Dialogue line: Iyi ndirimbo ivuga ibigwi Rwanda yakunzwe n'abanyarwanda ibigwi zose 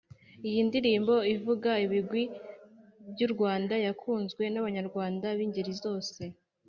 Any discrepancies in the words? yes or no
yes